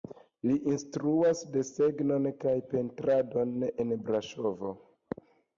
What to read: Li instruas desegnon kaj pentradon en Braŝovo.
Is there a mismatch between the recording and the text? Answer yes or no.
no